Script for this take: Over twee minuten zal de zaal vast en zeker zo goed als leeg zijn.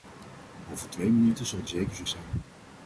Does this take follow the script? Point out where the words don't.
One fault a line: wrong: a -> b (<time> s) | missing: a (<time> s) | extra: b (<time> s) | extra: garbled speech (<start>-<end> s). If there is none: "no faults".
missing: zaal vast en (1.7 s)
missing: goed als leeg (2.0 s)